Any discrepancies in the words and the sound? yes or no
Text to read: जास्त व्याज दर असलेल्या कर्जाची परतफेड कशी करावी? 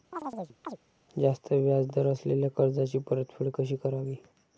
yes